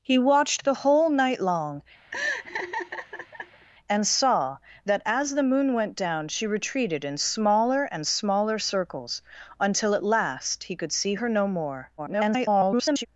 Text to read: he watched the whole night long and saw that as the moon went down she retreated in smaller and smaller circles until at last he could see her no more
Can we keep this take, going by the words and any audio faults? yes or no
no